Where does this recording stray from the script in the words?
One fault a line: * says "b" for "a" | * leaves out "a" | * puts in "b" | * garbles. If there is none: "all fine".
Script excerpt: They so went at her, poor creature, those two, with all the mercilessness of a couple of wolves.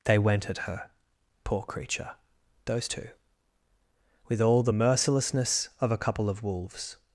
* leaves out "so"